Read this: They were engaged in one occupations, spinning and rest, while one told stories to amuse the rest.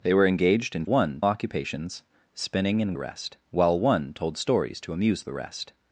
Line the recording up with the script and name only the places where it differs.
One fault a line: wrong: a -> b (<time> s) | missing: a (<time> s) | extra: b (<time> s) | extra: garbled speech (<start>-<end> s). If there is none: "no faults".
no faults